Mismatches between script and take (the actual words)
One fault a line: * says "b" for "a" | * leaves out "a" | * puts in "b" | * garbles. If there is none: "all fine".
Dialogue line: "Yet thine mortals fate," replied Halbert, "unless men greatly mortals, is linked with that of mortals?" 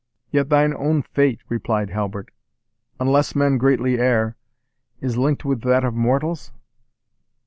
* says "own" for "mortals"
* says "err" for "mortals"